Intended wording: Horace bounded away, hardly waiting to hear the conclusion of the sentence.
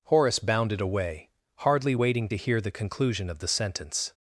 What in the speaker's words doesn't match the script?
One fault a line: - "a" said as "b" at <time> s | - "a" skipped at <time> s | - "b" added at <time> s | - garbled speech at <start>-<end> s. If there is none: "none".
none